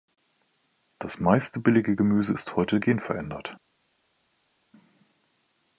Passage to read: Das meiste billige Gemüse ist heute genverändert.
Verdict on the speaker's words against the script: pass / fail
pass